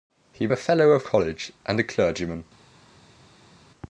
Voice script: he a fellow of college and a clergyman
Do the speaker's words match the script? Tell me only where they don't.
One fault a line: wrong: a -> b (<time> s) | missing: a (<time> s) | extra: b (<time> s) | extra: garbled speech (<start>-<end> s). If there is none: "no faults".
no faults